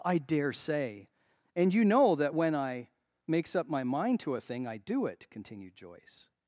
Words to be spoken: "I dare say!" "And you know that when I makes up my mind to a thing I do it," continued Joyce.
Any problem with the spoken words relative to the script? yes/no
no